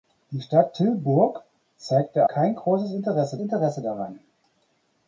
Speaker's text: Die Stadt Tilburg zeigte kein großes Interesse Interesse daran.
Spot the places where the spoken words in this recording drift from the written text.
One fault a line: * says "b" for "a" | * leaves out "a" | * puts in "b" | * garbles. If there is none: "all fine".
all fine